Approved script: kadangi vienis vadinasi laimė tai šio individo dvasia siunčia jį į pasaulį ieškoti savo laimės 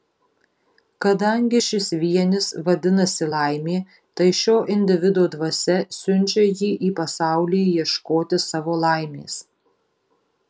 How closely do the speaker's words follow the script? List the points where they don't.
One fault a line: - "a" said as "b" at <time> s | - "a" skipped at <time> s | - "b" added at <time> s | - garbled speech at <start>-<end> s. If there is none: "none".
- "šis" added at 1.6 s